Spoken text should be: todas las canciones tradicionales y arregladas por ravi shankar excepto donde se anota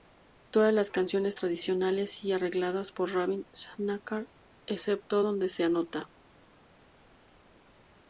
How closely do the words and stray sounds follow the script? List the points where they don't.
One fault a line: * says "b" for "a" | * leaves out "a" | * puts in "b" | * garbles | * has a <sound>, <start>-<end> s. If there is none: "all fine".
all fine